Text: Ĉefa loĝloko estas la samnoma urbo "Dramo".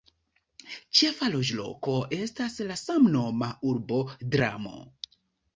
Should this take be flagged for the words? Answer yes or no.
no